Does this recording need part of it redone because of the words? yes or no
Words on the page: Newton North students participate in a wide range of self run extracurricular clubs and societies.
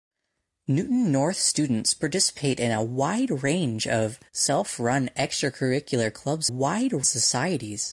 yes